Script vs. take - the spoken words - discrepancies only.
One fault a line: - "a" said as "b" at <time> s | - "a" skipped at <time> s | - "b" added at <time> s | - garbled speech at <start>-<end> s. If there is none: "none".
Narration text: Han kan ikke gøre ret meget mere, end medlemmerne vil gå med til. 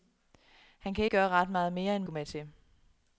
- "ikke" skipped at 1.1 s
- "medlemmerne vil" skipped at 2.0 s